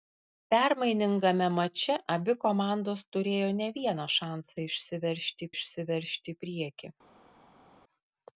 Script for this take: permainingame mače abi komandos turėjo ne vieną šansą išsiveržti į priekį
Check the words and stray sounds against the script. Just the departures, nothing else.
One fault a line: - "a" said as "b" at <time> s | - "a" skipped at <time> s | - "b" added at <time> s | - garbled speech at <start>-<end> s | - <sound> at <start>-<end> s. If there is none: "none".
- "išsiveržti" added at 5.5 s